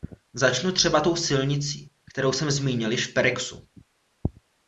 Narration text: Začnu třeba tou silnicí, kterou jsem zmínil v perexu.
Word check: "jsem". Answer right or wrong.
right